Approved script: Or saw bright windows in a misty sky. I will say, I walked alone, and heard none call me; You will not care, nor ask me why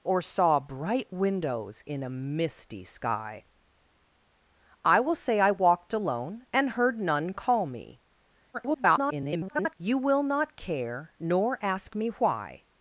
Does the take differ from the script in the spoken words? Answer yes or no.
yes